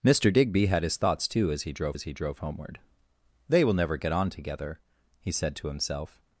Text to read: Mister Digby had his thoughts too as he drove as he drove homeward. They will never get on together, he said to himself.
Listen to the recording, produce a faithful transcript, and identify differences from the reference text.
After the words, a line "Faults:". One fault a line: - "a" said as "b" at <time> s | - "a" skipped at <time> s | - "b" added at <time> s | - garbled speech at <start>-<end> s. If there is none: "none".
Mister Digby had his thoughts too as he drove as he drove homeward. They will never get on together, he said to himself.
Faults:
none